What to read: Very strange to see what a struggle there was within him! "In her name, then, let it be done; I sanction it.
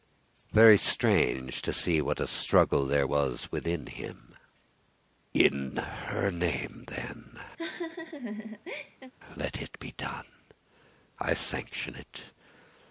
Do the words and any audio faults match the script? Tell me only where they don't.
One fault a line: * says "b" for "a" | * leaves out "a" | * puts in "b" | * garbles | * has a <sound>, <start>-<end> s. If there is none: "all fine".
* has a laugh, 7.6-9.1 s